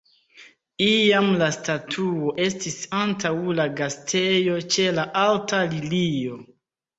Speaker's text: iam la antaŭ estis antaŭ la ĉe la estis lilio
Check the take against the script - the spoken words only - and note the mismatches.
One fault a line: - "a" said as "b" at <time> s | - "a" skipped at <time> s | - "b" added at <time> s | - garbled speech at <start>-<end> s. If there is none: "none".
- "antaŭ" said as "statuo" at 1.6 s
- "gastejo" added at 3.8 s
- "estis" said as "alta" at 5.3 s